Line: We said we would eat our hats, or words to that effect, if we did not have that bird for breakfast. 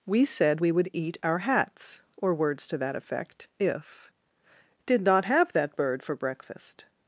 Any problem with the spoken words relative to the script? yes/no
yes